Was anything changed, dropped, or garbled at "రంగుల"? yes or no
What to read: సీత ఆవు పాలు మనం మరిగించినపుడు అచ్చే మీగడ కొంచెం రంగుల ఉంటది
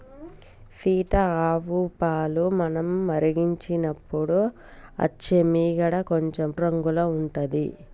no